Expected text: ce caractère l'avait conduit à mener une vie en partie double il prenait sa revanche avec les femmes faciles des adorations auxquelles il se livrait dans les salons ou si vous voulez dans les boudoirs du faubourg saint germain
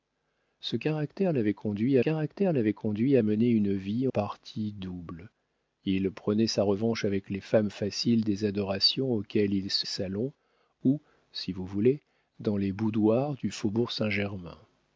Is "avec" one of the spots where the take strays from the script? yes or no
no